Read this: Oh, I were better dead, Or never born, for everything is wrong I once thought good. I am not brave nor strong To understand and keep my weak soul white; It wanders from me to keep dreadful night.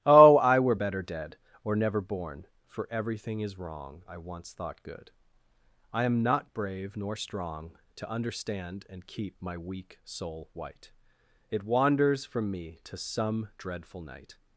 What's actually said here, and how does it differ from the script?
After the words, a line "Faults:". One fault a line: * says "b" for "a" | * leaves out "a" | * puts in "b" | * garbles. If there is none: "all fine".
Oh, I were better dead, Or never born, for everything is wrong I once thought good. I am not brave nor strong To understand and keep my weak soul white; It wanders from me to some dreadful night.
Faults:
* says "some" for "keep"